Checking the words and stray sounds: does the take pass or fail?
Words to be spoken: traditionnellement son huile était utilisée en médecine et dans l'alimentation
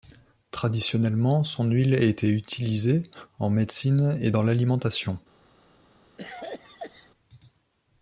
fail